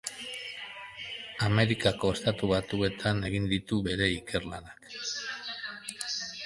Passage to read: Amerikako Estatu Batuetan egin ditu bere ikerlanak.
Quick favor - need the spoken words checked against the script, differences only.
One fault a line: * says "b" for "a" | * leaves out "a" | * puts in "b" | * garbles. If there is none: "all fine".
all fine